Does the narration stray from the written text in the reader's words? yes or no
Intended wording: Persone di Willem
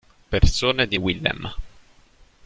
no